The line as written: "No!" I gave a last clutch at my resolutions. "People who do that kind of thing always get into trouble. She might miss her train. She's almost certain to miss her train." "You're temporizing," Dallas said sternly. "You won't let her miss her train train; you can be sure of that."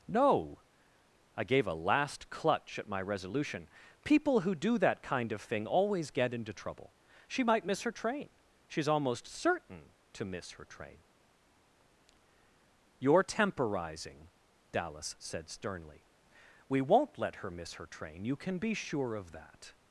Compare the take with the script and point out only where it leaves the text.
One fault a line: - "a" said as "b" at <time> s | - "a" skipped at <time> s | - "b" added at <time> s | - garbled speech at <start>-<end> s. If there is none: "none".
- "resolutions" said as "resolution" at 3.0 s
- "You" said as "We" at 16.7 s
- "train" skipped at 18.3 s